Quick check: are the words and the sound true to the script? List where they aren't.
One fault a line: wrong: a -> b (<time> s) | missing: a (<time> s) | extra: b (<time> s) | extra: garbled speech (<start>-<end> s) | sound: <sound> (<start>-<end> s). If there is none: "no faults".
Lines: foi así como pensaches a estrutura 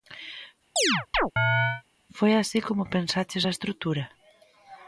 sound: chirp (0.8-1.8 s)